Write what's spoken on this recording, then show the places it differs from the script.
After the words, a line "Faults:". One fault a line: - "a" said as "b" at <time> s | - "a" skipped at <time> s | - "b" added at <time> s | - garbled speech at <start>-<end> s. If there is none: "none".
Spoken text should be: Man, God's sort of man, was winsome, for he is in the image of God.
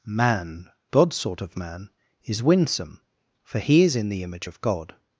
Man, God's sort of man, is winsome, for he is in the image of God.
Faults:
- "was" said as "is" at 2.2 s